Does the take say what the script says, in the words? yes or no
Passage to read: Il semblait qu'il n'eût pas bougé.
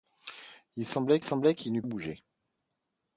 no